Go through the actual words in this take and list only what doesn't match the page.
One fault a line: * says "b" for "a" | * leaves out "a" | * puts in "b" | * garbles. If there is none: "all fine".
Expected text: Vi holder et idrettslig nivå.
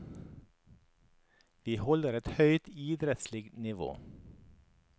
* puts in "høyt"